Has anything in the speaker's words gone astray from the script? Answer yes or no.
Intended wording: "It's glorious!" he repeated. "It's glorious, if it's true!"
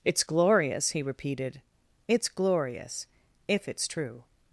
no